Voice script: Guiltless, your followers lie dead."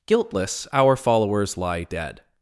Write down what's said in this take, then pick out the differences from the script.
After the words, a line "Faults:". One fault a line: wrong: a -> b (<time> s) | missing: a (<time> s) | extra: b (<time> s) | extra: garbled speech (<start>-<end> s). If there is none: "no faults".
Guiltless, our followers lie dead."
Faults:
wrong: your -> our (0.7 s)